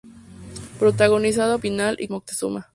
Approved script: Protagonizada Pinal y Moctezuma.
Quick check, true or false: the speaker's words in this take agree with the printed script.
true